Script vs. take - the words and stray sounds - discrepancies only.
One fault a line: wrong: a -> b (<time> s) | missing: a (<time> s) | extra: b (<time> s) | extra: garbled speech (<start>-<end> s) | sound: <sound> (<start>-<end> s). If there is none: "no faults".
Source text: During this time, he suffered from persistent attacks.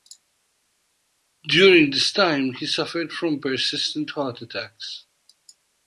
extra: heart (4.1 s)